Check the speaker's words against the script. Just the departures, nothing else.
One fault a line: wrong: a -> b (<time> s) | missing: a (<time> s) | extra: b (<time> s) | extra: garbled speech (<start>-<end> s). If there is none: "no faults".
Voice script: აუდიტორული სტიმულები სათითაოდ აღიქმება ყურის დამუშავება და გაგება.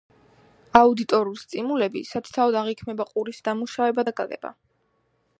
no faults